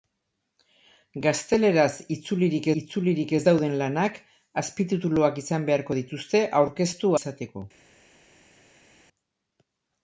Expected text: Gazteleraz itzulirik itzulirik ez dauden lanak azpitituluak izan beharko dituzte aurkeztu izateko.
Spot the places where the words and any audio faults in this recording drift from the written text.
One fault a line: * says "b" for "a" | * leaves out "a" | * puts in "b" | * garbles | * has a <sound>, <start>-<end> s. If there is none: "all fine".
all fine